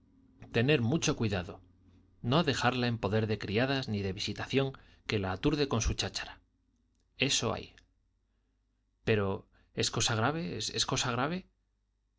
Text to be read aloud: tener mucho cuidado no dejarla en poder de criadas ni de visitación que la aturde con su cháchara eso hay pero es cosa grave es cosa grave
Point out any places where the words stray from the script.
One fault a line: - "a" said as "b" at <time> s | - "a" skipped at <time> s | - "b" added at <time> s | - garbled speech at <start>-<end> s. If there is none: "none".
none